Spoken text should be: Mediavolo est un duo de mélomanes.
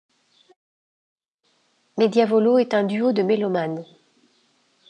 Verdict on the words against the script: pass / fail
pass